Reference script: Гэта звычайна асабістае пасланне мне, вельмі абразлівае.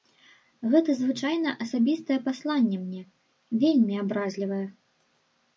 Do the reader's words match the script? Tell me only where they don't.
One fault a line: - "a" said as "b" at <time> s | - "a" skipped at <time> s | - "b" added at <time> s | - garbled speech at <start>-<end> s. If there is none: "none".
none